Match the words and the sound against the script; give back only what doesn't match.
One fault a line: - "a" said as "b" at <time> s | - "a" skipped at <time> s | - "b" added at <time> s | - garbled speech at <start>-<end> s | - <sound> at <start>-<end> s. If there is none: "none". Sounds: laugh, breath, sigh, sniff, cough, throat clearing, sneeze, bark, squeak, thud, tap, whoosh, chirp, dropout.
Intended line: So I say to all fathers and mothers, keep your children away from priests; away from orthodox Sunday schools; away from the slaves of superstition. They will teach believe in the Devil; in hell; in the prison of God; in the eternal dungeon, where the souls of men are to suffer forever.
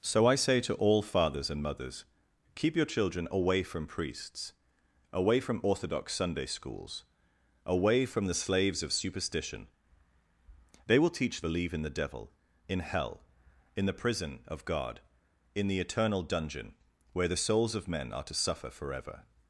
none